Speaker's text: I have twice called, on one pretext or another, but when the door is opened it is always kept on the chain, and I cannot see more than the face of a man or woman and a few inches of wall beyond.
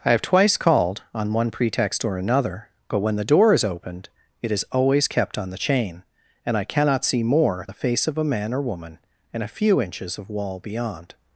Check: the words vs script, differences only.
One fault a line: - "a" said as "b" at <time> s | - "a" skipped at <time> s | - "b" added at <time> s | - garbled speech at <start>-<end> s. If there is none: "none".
- "than" skipped at 7.7 s